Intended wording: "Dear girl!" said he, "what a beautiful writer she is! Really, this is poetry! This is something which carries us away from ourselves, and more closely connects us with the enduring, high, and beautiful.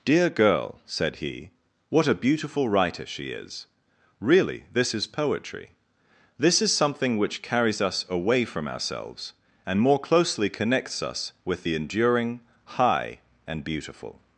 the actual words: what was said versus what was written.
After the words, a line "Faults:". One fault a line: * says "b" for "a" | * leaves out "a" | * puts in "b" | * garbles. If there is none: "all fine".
"Dear girl!" said he, "what a beautiful writer she is! Really, this is poetry! This is something which carries us away from ourselves, and more closely connects us with the enduring, high, and beautiful.
Faults:
all fine